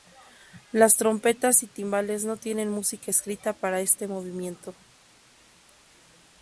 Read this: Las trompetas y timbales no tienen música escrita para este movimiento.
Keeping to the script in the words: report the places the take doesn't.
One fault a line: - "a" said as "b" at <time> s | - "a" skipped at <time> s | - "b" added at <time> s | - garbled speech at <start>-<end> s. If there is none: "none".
none